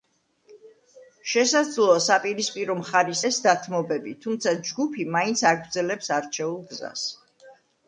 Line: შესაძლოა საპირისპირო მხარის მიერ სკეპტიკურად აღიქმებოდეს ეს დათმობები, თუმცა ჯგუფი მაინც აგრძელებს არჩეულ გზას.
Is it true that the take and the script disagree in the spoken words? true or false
true